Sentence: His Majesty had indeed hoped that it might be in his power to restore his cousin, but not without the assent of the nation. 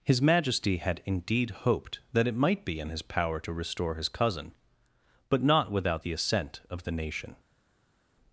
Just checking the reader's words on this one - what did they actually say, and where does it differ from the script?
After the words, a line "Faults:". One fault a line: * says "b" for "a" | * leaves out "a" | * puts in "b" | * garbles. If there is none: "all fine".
His Majesty had indeed hoped that it might be in his power to restore his cousin, but not without the assent of the nation.
Faults:
all fine